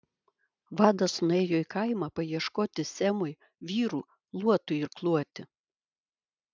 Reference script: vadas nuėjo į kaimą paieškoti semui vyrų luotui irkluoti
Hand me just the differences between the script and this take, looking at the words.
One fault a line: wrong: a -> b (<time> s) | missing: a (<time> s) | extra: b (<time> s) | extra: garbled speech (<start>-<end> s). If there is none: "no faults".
no faults